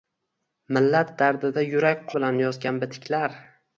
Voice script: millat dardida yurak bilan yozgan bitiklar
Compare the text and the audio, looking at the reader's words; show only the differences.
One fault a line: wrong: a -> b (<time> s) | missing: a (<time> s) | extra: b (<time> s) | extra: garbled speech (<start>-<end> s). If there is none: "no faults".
no faults